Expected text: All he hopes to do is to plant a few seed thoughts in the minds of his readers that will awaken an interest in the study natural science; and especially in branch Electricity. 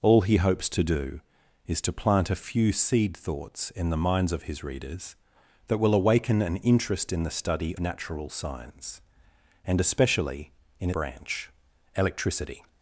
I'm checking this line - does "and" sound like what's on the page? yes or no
yes